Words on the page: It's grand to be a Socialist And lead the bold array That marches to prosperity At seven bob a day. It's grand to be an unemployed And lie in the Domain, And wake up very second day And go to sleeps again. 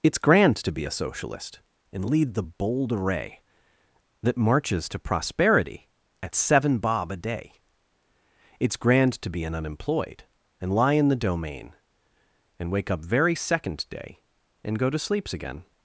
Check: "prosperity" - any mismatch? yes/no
no